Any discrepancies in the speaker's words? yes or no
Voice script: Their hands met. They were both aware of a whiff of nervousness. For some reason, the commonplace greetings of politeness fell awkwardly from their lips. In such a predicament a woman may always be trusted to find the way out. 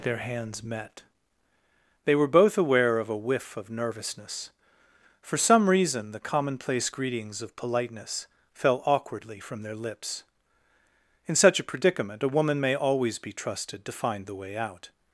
no